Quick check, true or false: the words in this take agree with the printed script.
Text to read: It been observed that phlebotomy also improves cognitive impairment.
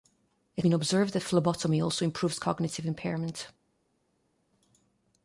true